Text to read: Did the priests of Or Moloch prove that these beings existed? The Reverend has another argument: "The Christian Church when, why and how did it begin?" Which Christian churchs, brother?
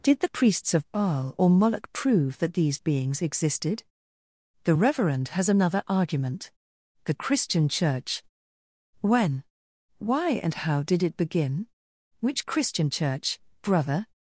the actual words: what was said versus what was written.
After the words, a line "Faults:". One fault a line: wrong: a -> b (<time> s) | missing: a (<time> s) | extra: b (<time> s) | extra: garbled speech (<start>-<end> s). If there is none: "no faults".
Did the priests of Baal or Moloch prove that these beings existed? The Reverend has another argument: "The Christian Church when, why and how did it begin?" Which Christian church, brother?
Faults:
extra: Baal (0.9 s)
wrong: churchs -> church (12.9 s)